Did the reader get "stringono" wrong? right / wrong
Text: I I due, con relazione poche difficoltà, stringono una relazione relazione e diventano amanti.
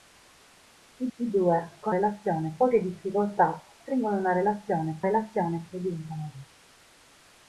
right